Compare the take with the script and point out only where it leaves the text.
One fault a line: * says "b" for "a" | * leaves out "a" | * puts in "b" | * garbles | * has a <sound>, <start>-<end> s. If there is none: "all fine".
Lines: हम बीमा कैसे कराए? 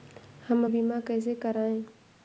all fine